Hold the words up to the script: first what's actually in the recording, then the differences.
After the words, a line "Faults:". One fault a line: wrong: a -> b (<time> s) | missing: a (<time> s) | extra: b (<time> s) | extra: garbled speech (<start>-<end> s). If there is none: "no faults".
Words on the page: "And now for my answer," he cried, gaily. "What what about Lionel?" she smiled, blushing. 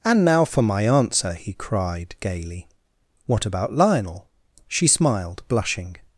"And now for my answer," he cried, gaily. "What about Lionel?" she smiled, blushing.
Faults:
missing: what (3.4 s)